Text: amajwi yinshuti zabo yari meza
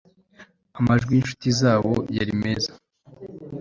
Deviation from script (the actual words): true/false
false